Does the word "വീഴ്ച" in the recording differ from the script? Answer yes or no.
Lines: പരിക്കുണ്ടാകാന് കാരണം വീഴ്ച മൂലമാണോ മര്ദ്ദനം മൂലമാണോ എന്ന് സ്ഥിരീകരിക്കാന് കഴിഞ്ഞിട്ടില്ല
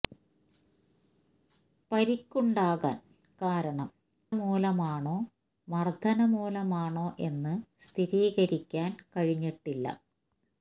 yes